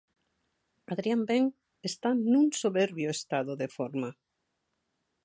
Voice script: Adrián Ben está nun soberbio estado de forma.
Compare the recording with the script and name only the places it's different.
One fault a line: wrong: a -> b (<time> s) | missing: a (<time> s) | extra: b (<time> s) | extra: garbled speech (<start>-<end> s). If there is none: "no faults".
no faults